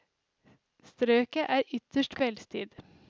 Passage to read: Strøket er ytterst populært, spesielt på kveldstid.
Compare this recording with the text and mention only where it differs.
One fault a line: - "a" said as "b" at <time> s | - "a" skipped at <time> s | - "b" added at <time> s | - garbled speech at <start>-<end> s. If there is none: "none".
- "populært spesielt på" skipped at 2.2 s